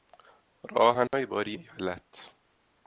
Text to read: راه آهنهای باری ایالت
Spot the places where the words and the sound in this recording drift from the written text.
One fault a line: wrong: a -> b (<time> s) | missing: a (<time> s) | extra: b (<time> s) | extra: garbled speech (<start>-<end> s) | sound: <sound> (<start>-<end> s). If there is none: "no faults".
sound: dropout (1.1-1.1 s)